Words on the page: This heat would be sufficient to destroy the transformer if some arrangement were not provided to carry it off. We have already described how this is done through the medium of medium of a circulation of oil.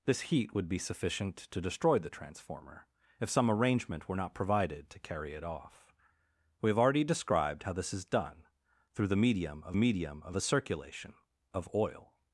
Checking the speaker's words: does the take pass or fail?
pass